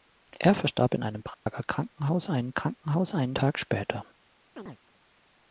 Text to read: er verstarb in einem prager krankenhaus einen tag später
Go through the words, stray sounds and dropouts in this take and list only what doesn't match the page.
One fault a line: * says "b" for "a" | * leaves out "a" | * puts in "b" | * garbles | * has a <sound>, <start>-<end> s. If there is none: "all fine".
* has a dropout, 1.3-1.5 s
* puts in "krankenhaus einen"
* has a chirp, 4.6-4.8 s